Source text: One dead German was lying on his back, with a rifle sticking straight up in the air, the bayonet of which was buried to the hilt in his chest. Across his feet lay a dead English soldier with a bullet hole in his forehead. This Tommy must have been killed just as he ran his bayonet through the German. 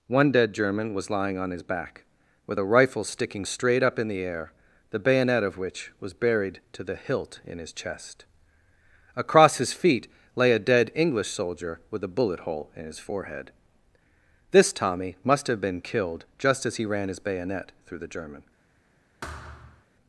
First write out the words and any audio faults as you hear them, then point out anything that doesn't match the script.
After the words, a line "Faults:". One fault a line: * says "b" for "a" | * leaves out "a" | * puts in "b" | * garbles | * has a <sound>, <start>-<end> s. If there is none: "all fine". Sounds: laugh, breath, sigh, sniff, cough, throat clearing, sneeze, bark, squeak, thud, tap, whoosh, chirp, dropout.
One dead German was lying on his back, with a rifle sticking straight up in the air, the bayonet of which was buried to the hilt in his chest. Across his feet lay a dead English soldier with a bullet hole in his forehead. This Tommy must have been killed just as he ran his bayonet through the German.
Faults:
* has a thud, 19.2-19.9 s